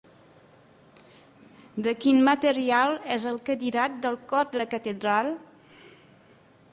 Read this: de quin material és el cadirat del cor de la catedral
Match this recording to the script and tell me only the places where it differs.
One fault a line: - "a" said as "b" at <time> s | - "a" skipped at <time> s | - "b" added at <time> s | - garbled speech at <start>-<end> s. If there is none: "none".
none